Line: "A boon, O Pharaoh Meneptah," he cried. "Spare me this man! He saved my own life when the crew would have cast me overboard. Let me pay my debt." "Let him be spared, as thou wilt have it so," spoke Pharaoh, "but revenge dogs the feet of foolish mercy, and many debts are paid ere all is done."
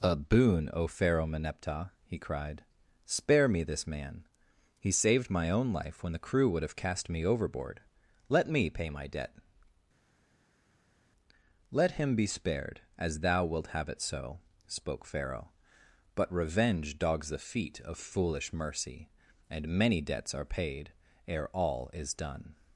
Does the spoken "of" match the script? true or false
true